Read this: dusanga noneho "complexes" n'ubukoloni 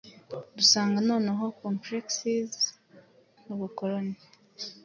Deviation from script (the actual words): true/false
false